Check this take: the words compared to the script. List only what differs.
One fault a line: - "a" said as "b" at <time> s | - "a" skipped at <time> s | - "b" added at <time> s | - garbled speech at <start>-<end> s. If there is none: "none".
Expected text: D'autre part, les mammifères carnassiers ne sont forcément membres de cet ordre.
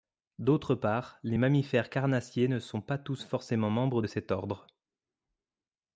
- "pas tous" added at 2.8 s